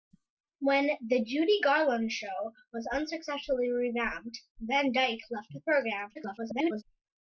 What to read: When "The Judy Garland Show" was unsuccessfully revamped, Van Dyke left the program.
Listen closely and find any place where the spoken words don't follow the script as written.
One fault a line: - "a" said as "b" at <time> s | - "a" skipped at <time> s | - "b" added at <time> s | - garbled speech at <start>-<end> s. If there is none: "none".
- garbled speech at 6.1-6.8 s